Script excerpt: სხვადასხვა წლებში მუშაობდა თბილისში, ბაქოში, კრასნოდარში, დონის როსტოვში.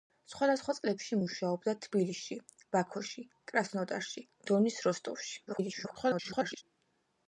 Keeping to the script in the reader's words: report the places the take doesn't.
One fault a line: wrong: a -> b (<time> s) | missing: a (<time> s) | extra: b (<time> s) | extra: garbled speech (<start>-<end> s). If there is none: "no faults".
extra: garbled speech (5.5-6.6 s)